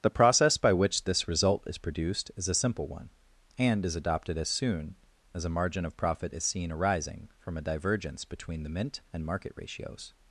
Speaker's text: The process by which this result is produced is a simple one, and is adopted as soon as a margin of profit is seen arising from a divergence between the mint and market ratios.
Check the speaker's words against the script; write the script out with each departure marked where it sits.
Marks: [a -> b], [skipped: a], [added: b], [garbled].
The process by which this result is produced is a simple one, and is adopted as soon as a margin of profit is seen arising from a divergence between the mint and market ratios.